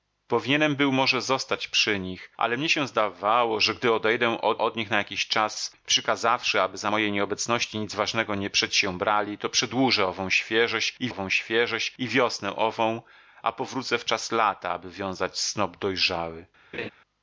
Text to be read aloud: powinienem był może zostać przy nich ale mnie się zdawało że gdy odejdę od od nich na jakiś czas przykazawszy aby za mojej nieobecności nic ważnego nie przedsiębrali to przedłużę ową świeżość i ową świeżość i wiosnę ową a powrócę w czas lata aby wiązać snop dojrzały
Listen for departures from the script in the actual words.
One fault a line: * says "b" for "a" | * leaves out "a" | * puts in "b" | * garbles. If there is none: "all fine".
all fine